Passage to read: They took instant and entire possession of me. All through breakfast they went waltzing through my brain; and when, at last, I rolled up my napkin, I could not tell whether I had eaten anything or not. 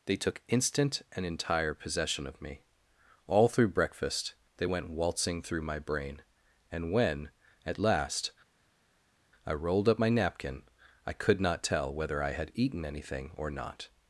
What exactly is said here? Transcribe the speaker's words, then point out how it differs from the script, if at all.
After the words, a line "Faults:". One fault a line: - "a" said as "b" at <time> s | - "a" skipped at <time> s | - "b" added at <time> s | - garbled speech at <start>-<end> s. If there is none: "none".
They took instant and entire possession of me. All through breakfast they went waltzing through my brain; and when, at last, I rolled up my napkin, I could not tell whether I had eaten anything or not.
Faults:
none